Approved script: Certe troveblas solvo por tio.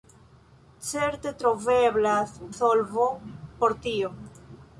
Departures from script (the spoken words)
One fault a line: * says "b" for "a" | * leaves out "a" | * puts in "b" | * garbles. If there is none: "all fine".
all fine